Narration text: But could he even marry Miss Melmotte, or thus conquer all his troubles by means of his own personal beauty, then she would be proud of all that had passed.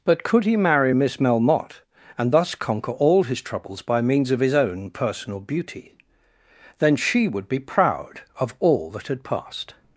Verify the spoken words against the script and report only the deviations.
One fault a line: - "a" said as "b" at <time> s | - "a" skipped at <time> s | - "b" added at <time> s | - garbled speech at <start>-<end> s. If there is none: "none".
- "even" skipped at 0.6 s
- "or" said as "and" at 2.2 s